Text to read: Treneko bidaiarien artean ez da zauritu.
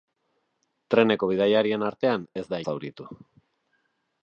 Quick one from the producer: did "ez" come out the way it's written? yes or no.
yes